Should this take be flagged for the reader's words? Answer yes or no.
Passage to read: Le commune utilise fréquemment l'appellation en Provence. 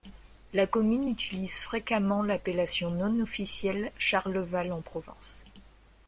yes